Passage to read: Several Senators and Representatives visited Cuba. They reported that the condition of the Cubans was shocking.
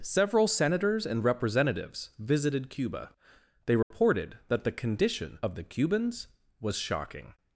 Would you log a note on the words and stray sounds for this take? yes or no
yes